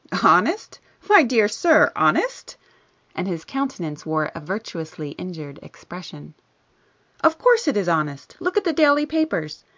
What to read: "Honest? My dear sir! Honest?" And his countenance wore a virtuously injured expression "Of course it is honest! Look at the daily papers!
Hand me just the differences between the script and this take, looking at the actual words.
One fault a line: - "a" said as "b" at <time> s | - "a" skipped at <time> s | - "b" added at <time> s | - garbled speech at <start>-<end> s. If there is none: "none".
none